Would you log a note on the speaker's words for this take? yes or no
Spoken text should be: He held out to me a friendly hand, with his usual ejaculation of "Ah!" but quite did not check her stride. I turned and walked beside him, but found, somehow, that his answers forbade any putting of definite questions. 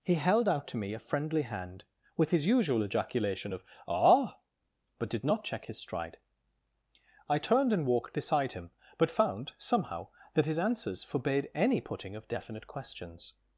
yes